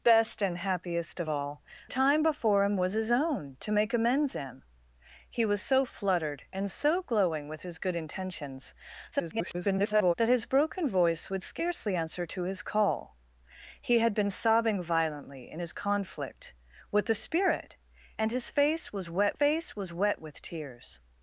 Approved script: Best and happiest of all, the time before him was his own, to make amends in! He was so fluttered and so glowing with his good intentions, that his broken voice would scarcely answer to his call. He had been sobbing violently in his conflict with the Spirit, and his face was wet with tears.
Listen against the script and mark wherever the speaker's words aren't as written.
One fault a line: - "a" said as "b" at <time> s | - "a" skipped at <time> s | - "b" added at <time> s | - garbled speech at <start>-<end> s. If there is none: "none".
- "the" skipped at 1.6 s
- garbled speech at 9.1-10.1 s
- "face was wet" added at 19.3 s